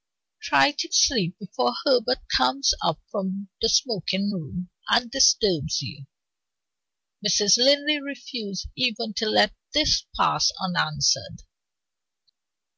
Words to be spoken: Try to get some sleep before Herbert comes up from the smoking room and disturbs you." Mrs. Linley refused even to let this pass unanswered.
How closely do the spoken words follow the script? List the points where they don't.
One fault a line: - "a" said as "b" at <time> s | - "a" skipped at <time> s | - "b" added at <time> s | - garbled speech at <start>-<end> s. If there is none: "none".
- "get some" skipped at 0.9 s